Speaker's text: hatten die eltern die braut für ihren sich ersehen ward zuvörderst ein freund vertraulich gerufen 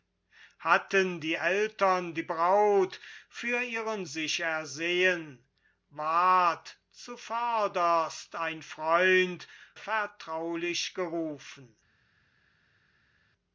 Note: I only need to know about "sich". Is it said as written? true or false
true